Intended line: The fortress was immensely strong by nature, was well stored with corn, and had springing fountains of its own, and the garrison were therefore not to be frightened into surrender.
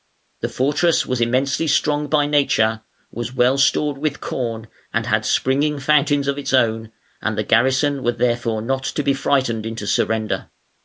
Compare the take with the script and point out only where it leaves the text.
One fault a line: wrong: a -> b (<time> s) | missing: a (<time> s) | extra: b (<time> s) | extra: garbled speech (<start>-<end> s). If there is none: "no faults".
no faults